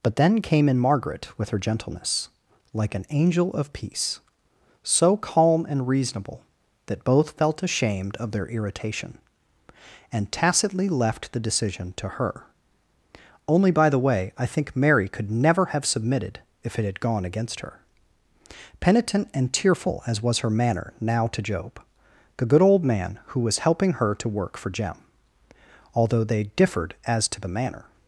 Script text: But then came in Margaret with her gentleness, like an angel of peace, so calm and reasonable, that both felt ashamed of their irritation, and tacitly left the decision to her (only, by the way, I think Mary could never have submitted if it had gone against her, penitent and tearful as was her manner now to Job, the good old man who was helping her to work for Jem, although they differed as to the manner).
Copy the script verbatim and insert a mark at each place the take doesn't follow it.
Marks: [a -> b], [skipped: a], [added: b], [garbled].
But then came in Margaret with her gentleness, like an angel of peace, so calm and reasonable, that both felt ashamed of their irritation, and tacitly left the decision to her (only, by the way, I think Mary could never have submitted if it had gone against her, penitent and tearful as was her manner now to Job, the good old man who was helping her to work for Jem, although they differed as to the manner).